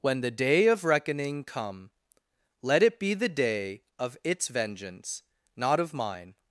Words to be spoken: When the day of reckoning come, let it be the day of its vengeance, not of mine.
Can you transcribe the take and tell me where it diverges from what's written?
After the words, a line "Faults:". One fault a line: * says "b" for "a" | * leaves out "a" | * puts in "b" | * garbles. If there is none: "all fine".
When the day of reckoning come, let it be the day of its vengeance, not of mine.
Faults:
all fine